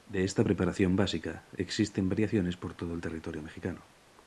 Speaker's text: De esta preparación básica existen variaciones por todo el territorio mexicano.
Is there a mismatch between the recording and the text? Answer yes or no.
no